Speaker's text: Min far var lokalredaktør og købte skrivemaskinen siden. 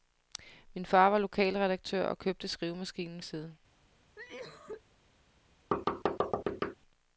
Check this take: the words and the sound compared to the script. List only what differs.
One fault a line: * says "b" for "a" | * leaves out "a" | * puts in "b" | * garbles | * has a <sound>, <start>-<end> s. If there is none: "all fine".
* has a cough, 4.2-4.8 s
* has a thud, 5.7-6.8 s